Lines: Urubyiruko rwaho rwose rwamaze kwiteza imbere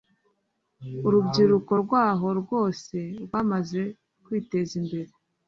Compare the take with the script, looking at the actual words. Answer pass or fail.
pass